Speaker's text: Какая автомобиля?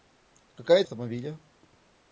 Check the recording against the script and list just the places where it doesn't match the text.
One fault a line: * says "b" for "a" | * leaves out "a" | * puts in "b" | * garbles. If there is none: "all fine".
all fine